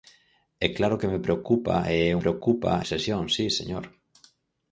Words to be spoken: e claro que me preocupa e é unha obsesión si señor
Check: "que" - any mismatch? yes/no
no